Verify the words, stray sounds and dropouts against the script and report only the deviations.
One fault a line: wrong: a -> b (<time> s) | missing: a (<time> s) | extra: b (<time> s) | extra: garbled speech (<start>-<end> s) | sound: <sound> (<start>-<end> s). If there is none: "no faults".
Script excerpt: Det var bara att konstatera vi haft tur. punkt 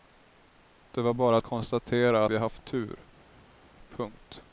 no faults